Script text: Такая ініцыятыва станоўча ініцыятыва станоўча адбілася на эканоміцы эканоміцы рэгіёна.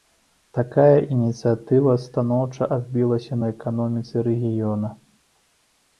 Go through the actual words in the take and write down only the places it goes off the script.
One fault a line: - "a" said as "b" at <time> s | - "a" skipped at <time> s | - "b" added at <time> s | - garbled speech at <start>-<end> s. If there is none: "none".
- "ініцыятыва станоўча" skipped at 2.7 s
- "эканоміцы" skipped at 4.1 s